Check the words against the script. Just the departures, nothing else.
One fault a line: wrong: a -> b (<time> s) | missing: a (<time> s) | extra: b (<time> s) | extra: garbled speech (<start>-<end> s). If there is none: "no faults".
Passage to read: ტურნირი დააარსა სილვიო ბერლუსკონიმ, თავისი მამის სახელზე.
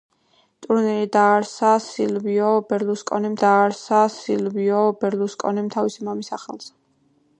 extra: დააარსა სილვიო ბერლუსკონიმ (3.4 s)